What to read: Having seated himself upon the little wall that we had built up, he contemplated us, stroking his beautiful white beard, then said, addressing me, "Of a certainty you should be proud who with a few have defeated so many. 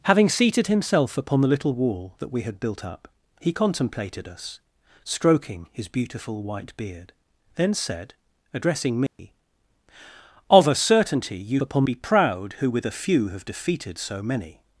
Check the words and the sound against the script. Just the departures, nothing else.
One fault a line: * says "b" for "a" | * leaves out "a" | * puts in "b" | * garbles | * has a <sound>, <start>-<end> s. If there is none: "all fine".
* has a dropout, 9.1-9.2 s
* says "upon" for "should"